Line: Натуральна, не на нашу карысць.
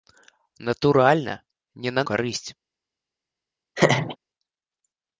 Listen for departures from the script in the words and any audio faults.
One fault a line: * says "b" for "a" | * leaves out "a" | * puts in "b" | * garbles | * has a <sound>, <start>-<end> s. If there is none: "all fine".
* leaves out "нашу"
* has a laugh, 3.8-4.2 s